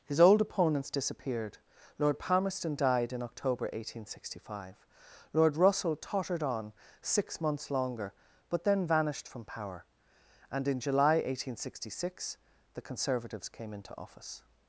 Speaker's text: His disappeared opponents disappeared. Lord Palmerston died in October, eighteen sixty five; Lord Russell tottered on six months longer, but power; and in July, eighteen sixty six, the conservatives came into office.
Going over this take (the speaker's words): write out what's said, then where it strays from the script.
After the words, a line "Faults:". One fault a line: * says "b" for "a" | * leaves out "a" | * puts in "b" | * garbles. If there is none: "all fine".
His old opponents disappeared. Lord Palmerston died in October, eighteen sixty five; Lord Russell tottered on six months longer, but then vanished from power; and in July, eighteen sixty six, the conservatives came into office.
Faults:
* says "old" for "disappeared"
* puts in "then vanished from"